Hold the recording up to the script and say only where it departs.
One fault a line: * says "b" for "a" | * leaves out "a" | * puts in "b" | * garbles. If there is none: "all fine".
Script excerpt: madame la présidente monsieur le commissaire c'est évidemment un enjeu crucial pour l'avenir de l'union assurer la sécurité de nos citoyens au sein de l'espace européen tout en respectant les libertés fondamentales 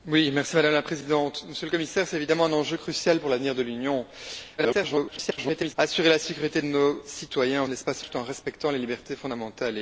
* garbles
* leaves out "sein"
* leaves out "européen"